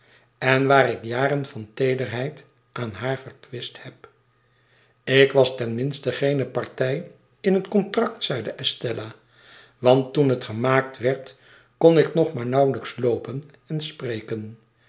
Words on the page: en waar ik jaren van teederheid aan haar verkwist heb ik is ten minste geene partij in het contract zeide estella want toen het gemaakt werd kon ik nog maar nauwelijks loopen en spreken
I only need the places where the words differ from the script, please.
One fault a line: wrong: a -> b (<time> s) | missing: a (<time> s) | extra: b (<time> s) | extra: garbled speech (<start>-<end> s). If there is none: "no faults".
wrong: is -> was (5.3 s)